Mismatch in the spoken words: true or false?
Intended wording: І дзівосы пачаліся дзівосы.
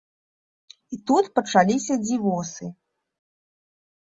true